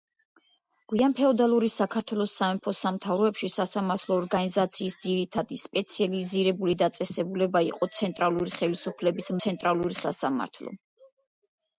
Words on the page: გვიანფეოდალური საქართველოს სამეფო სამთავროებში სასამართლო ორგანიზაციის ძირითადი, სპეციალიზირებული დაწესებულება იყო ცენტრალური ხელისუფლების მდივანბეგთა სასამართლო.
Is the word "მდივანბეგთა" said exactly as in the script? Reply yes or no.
no